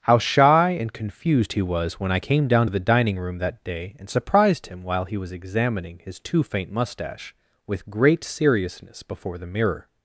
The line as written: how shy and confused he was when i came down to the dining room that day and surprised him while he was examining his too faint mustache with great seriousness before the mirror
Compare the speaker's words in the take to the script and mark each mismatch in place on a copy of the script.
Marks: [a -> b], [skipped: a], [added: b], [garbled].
how shy and confused he was when i came down to the dining room that day and surprised him while he was examining his too faint mustache with great seriousness before the mirror